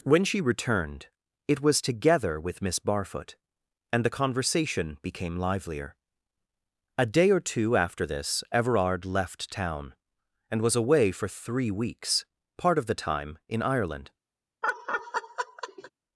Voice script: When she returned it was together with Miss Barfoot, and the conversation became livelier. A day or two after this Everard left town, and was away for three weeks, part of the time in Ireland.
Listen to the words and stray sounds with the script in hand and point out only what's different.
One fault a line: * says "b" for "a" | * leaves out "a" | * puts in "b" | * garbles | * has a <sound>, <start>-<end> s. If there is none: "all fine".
* has a laugh, 14.6-15.9 s